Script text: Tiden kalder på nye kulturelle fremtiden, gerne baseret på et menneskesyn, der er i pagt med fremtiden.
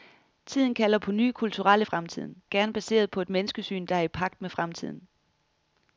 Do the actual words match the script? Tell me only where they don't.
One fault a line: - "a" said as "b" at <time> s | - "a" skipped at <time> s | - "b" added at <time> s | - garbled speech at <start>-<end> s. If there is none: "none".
none